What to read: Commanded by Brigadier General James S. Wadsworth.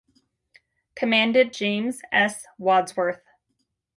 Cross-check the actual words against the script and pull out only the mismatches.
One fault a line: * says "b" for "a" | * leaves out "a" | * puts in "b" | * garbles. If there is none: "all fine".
* leaves out "by Brigadier General"